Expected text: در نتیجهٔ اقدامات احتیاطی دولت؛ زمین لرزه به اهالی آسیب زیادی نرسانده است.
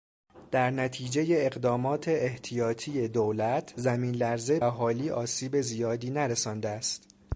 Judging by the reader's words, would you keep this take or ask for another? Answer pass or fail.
fail